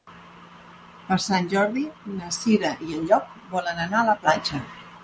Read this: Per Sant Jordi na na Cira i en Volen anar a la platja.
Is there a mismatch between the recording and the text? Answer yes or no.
yes